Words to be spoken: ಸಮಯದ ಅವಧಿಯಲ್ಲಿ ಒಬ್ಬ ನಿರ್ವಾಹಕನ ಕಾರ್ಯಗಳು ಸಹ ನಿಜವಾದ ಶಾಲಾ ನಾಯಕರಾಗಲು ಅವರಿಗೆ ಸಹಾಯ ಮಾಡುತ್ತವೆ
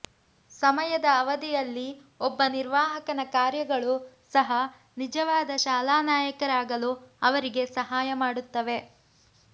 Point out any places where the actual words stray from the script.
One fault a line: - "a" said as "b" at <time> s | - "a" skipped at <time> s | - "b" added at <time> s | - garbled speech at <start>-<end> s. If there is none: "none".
none